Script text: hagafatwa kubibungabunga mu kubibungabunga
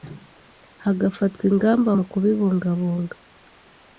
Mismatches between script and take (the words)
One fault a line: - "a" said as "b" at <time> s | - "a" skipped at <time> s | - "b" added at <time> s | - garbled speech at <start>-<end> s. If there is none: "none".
- "kubibungabunga" said as "ingamba" at 1.5 s